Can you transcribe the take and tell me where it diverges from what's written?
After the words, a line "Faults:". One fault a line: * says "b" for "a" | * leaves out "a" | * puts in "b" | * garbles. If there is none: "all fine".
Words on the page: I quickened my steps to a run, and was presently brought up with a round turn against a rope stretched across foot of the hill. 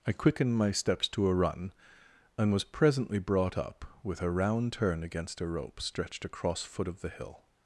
I quickened my steps to a run, and was presently brought up with a round turn against a rope stretched across foot of the hill.
Faults:
all fine